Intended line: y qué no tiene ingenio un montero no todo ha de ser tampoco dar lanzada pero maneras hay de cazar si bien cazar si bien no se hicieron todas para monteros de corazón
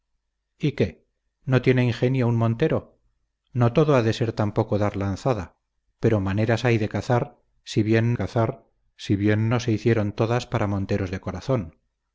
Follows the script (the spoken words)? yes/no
yes